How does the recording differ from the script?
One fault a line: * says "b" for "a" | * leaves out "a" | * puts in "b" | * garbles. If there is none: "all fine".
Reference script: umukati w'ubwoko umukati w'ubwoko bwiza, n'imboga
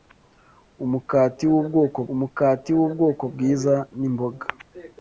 all fine